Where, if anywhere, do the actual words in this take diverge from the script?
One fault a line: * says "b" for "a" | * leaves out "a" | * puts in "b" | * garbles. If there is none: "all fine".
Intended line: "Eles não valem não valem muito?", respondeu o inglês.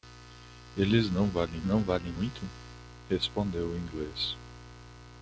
all fine